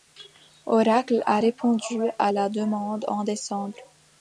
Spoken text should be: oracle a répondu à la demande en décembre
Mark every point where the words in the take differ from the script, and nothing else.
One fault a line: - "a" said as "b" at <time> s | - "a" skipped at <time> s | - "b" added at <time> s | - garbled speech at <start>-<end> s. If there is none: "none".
none